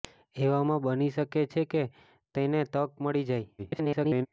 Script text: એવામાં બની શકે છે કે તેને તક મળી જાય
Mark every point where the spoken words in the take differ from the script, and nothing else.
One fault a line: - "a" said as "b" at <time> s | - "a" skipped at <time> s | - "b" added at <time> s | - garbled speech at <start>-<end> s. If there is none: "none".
- garbled speech at 3.6-4.3 s